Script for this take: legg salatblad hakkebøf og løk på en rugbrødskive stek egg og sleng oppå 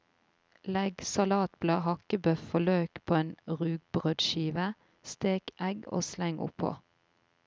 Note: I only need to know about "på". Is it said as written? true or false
true